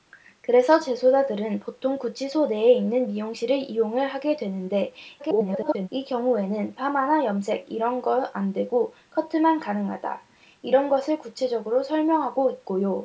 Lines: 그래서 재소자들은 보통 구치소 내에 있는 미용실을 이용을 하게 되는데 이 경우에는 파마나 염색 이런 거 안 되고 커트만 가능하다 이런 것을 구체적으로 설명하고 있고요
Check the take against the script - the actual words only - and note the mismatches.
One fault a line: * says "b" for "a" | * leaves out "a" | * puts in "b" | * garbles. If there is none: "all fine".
* garbles